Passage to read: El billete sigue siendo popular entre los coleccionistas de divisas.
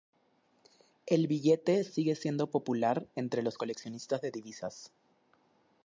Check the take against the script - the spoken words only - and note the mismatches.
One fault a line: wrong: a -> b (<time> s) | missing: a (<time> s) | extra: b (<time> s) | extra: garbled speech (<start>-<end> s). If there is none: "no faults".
no faults